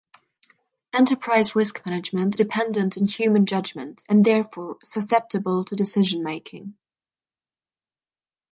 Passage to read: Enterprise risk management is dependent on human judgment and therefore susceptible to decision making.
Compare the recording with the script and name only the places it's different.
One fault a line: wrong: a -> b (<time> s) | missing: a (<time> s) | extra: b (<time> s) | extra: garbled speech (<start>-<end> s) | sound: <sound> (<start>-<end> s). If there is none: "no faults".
missing: is (2.4 s)